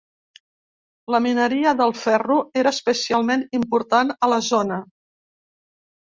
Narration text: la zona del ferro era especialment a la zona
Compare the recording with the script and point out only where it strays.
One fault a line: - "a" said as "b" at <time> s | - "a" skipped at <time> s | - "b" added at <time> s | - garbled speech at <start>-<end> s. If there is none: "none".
- "zona" said as "mineria" at 1.2 s
- "important" added at 3.6 s